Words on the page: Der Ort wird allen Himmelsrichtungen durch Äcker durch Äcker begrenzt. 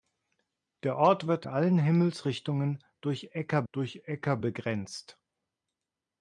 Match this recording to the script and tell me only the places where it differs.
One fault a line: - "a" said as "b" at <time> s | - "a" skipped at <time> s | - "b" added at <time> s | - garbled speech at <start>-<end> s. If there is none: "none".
none